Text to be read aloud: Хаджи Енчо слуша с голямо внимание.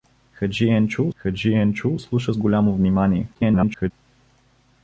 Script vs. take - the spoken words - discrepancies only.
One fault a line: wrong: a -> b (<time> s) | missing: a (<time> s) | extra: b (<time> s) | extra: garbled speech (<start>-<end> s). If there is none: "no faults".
extra: хаджи Енчо (1.2 s)
extra: garbled speech (3.3-3.9 s)